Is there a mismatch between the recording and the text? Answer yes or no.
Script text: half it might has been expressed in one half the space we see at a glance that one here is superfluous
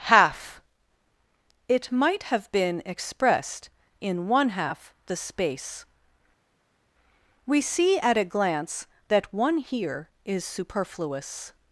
yes